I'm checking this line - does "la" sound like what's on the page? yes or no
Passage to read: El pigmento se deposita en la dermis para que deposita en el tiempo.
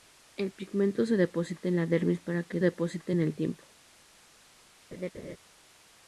yes